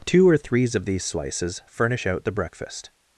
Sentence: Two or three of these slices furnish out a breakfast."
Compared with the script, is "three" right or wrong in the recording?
wrong